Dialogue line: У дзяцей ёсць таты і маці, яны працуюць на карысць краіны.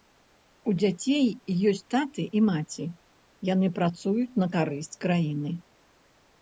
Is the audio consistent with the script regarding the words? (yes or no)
yes